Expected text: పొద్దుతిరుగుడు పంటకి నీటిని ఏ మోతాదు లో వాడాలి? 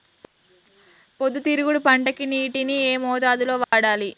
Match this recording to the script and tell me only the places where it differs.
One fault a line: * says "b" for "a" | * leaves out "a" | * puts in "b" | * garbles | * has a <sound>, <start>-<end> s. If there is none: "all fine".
* has a dropout, 3.6-3.7 s